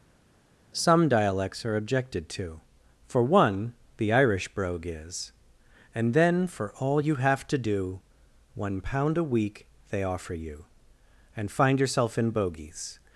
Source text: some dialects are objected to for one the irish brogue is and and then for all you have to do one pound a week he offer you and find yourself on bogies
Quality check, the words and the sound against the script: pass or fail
fail